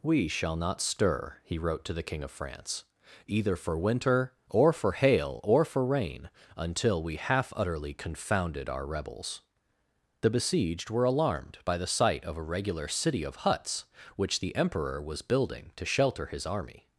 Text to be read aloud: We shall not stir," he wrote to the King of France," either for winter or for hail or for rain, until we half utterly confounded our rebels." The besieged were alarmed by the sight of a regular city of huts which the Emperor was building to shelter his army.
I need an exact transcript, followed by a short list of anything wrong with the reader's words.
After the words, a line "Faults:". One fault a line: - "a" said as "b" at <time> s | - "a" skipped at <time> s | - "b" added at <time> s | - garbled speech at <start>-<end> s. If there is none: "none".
We shall not stir," he wrote to the King of France," either for winter or for hail or for rain, until we half utterly confounded our rebels." The besieged were alarmed by the sight of a regular city of huts which the Emperor was building to shelter his army.
Faults:
none